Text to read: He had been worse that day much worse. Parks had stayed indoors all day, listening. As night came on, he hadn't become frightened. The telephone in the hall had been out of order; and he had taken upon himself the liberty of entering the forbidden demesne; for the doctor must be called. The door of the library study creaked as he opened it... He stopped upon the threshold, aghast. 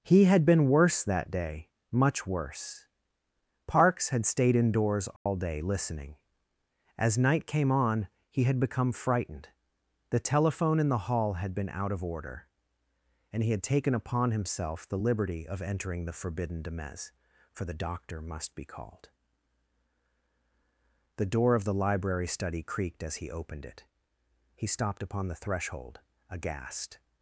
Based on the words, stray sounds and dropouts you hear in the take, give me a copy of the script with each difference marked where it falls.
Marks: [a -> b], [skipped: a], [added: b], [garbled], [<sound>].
He had been worse that day much worse. Parks had stayed indoors all [dropout] day, listening. As night came on, he [hadn't -> had] become frightened. The telephone in the hall had been out of order; and he had taken upon himself the liberty of entering the forbidden demesne; for the doctor must be called. The door of the library study creaked as he opened it... He stopped upon the threshold, aghast.